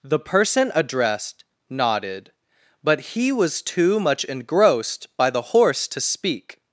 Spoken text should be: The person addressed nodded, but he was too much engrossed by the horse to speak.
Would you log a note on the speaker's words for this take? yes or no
no